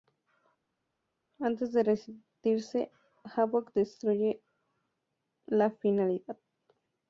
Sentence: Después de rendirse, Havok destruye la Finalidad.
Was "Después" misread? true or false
true